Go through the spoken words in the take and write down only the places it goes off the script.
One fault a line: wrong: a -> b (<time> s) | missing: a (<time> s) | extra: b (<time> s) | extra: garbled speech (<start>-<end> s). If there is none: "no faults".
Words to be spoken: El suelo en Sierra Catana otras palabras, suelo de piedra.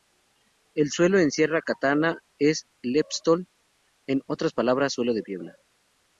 extra: es leptosol en (2.4 s)